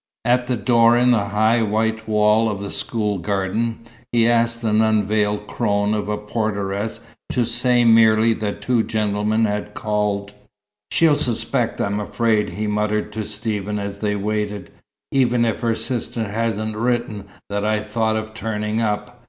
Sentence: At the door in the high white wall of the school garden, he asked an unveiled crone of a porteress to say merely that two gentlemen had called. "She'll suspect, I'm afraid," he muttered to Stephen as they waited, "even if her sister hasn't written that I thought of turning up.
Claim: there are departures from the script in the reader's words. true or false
false